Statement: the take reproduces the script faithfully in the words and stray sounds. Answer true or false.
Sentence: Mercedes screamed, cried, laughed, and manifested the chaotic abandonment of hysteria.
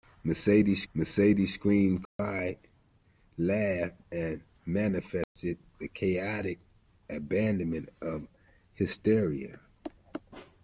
false